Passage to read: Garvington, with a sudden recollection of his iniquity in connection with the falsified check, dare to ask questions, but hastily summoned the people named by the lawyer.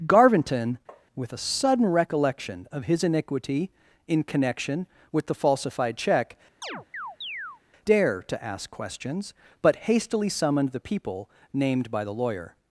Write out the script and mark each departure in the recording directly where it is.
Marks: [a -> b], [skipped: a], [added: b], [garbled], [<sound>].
Garvington, [tap] with a sudden recollection of his iniquity in connection with the falsified check, [chirp] dare to ask questions, but hastily summoned the people named by the lawyer.